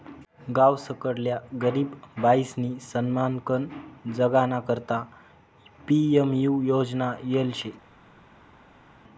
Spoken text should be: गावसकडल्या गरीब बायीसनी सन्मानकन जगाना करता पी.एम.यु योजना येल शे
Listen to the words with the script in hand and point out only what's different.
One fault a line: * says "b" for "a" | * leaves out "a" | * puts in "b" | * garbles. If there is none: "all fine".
all fine